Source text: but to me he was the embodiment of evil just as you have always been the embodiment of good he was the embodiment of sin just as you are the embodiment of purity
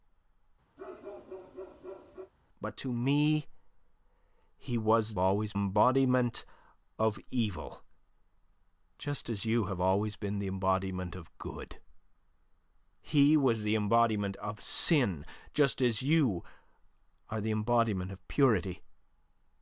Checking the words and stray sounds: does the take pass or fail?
fail